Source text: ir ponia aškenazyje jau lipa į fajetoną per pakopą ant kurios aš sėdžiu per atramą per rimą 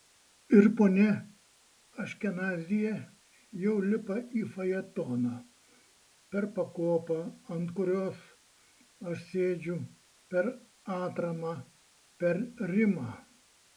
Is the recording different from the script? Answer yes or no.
no